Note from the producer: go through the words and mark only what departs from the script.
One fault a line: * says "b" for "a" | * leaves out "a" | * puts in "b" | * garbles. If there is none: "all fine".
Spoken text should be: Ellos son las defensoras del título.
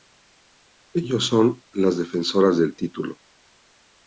all fine